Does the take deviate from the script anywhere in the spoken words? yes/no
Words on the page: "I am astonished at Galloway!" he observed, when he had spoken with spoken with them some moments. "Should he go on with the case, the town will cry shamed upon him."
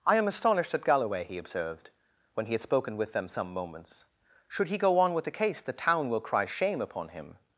yes